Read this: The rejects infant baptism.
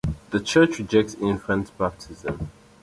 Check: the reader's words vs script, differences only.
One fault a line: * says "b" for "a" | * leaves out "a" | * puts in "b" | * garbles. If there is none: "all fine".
* puts in "church"